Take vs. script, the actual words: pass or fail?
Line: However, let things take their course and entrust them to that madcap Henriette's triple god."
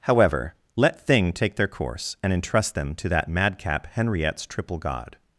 fail